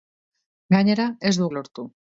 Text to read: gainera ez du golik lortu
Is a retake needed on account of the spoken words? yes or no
yes